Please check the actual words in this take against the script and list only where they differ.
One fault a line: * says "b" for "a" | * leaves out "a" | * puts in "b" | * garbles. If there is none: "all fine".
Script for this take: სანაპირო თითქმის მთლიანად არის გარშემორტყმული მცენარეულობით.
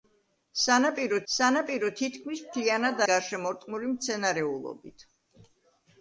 * puts in "სანაპირო"
* leaves out "არის"